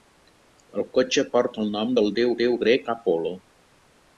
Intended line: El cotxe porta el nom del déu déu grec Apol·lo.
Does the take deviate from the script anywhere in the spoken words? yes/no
no